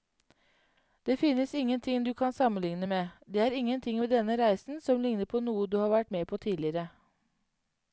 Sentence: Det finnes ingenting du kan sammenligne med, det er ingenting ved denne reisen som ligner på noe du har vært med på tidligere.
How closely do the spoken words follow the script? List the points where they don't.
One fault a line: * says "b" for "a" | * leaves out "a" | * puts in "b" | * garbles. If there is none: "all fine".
all fine